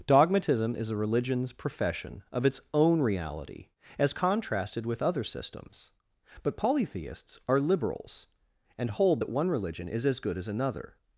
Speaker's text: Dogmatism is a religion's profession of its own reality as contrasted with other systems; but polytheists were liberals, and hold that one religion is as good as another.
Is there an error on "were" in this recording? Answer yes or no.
yes